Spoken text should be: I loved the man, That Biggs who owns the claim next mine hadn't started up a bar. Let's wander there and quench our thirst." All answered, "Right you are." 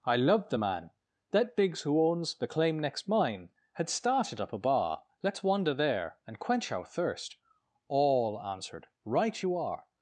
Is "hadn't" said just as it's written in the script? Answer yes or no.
no